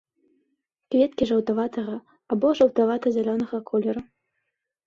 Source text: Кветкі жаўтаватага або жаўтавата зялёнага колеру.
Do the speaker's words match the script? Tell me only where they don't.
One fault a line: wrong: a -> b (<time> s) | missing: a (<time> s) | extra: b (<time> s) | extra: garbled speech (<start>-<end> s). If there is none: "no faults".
no faults